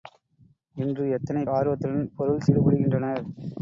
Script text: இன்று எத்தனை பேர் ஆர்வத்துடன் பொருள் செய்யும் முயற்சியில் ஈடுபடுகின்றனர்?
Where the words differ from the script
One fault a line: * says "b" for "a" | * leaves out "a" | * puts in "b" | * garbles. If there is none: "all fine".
* leaves out "பேர்"
* leaves out "செய்யும் முயற்சியில்"